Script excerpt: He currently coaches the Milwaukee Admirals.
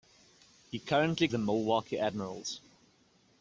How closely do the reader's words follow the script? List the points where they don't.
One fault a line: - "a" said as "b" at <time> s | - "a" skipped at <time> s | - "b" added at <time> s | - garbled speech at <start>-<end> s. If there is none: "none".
- "coaches" skipped at 1.3 s